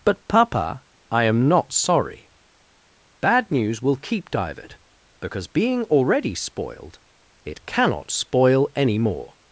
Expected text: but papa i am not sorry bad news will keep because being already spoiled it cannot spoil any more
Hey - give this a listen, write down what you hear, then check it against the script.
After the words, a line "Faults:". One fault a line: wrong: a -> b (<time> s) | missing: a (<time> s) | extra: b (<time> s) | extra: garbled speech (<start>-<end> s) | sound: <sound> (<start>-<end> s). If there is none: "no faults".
but papa i am not sorry bad news will keep divert because being already spoiled it cannot spoil any more
Faults:
extra: divert (4.3 s)